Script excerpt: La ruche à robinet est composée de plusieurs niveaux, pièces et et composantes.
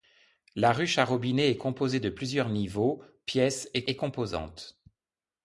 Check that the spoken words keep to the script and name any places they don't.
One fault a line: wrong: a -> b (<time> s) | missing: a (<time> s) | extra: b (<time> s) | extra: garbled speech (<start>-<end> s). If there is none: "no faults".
no faults